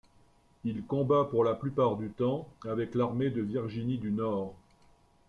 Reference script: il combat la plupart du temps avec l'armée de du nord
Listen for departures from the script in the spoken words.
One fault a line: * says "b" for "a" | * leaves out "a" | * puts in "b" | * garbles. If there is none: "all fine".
* puts in "pour"
* puts in "virginie"